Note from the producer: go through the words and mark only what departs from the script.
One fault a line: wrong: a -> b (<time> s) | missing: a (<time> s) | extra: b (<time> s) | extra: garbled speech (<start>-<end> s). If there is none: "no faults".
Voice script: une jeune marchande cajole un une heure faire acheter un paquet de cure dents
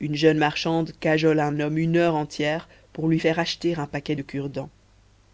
extra: homme (1.6 s)
extra: entière pour lui (2.1 s)